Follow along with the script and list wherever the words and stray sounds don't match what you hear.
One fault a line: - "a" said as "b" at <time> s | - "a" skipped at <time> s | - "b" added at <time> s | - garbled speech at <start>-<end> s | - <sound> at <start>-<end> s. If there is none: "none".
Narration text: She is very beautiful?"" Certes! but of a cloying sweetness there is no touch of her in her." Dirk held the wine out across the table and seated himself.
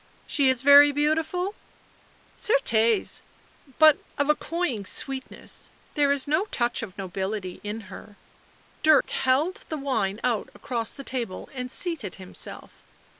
- "her" said as "nobility" at 7.0 s
- dropout at 9.0-9.0 s